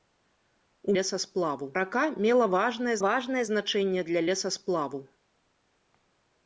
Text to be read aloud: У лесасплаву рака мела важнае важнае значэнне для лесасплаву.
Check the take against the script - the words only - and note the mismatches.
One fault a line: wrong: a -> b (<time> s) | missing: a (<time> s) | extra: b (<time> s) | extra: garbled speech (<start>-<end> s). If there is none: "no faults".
no faults